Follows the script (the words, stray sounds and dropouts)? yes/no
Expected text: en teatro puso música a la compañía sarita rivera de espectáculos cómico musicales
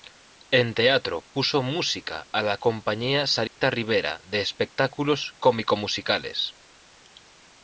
no